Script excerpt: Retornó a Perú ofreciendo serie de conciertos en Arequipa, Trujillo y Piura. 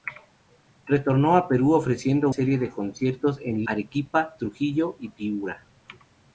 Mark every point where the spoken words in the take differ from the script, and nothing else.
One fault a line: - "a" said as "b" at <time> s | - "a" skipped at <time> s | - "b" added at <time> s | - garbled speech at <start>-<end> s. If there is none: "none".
none